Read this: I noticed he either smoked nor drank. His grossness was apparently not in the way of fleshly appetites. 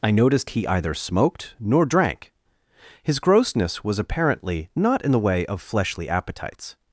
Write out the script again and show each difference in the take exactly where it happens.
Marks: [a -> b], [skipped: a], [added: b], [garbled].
I noticed he either smoked nor drank. His grossness was apparently not in the way of fleshly appetites.